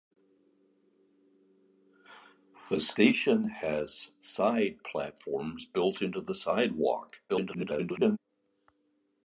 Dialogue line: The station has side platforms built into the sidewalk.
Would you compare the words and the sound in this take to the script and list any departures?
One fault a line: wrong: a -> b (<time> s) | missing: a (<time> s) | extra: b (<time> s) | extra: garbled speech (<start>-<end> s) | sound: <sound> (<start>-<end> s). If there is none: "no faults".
extra: garbled speech (7.3-8.2 s)